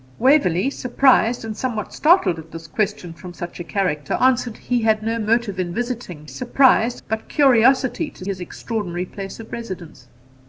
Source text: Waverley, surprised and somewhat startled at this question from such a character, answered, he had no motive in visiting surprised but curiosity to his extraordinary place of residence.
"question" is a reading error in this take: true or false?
false